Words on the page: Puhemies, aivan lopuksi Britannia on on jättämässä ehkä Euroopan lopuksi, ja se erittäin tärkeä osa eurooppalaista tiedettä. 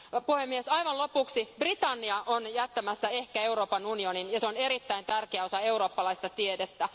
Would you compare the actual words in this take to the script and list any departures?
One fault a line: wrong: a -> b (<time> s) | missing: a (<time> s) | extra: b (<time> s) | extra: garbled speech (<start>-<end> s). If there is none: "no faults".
missing: on (2.5 s)
wrong: lopuksi -> unionin (3.9 s)
extra: on (4.5 s)